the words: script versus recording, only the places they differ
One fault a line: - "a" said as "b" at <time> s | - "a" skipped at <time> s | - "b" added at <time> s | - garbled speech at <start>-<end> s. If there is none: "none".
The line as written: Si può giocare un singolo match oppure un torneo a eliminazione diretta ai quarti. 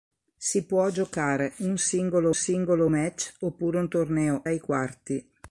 - "singolo" added at 2.3 s
- "a eliminazione diretta" skipped at 4.4 s